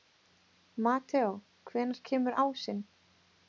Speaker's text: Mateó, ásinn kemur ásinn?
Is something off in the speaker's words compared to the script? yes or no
yes